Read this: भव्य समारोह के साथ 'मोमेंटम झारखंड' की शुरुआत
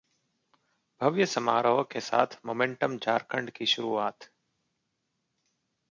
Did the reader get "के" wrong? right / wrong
right